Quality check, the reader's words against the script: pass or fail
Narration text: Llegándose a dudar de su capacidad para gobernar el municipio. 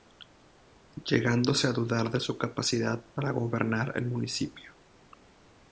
pass